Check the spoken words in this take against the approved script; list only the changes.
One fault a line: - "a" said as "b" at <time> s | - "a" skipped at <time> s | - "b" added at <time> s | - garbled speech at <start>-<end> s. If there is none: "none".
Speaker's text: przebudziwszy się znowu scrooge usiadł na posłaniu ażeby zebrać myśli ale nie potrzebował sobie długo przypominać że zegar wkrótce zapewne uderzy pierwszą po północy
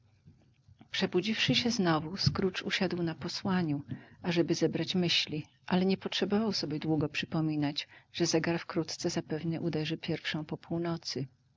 none